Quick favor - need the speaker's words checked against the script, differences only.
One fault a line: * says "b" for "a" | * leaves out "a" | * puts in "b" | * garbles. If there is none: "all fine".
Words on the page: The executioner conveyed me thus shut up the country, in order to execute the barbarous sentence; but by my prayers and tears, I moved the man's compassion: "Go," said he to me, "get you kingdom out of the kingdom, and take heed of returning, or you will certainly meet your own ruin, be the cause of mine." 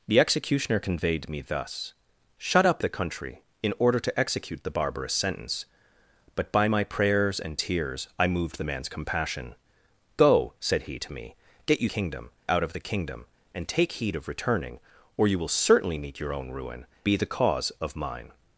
all fine